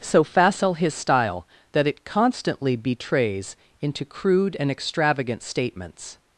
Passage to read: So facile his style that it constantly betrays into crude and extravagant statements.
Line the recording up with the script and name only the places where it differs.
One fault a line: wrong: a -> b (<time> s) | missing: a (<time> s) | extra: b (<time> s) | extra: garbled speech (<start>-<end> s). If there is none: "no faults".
no faults